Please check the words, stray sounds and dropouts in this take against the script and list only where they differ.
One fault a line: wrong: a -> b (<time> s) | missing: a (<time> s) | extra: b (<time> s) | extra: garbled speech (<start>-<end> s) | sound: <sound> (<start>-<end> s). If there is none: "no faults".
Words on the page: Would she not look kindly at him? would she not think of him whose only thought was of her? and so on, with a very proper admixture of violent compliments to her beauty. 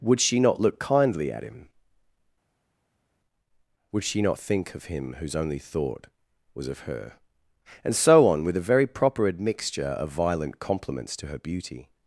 no faults